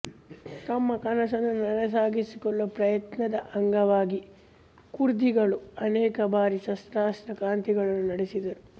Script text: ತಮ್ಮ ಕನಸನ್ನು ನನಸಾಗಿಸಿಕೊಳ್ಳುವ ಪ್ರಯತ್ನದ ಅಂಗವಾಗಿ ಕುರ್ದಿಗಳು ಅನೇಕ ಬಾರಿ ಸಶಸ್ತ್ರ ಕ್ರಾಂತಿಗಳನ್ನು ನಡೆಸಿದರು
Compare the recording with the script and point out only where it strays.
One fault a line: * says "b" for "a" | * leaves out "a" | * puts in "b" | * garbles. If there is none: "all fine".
all fine